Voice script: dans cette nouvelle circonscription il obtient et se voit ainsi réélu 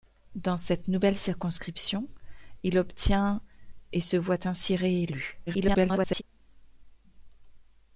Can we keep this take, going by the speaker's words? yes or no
no